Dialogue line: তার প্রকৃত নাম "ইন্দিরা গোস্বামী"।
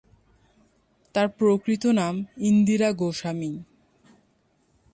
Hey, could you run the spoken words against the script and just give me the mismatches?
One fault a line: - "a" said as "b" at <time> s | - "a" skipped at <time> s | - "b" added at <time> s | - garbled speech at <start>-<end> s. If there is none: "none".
none